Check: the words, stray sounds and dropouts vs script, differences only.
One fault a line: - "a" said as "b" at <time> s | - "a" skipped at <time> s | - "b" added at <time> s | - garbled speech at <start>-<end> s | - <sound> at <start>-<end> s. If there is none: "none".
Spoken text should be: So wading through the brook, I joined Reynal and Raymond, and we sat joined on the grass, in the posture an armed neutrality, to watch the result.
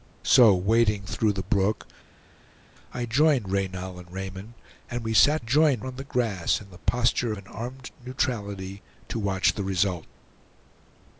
none